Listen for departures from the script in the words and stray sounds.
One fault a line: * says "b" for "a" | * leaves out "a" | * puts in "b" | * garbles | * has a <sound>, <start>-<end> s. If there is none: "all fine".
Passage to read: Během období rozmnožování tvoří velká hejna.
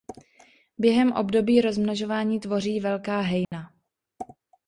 * has a dropout, 3.4-3.5 s